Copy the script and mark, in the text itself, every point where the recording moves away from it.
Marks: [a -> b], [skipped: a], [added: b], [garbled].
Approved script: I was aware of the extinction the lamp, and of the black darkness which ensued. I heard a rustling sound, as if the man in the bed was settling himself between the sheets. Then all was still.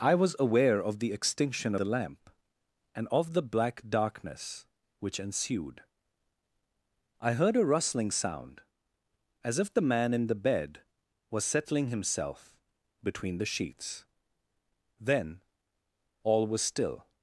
I was aware of the extinction the lamp, and of the black darkness which ensued. I heard a rustling sound, as if the man in the bed was settling himself between the sheets. Then all was still.